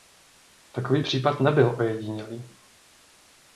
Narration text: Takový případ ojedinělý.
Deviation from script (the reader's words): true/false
true